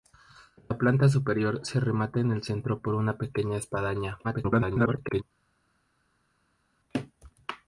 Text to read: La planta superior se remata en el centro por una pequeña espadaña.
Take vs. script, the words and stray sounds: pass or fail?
fail